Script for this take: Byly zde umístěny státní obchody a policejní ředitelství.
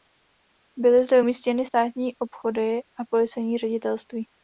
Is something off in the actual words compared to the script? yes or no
no